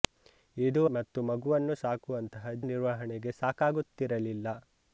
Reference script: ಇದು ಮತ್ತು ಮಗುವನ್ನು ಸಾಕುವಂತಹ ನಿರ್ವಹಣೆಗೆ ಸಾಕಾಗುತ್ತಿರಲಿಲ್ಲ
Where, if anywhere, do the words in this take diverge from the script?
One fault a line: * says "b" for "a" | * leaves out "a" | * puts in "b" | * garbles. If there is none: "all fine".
all fine